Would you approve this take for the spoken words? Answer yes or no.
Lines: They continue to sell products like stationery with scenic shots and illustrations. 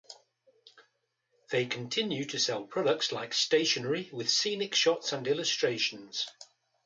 yes